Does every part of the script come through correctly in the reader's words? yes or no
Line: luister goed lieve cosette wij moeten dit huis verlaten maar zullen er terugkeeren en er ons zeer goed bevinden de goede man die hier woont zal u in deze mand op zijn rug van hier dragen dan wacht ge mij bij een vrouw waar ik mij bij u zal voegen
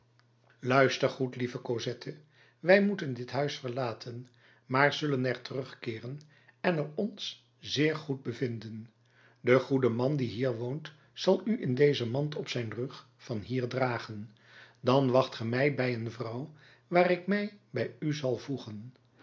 yes